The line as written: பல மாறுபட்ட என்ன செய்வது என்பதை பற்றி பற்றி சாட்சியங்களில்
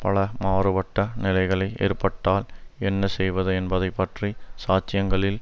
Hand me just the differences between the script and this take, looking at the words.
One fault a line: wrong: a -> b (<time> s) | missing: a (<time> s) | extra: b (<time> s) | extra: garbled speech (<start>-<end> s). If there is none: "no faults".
extra: நிலைகளை ஏற்பட்டால் (1.2 s)
missing: பற்றி (4.3 s)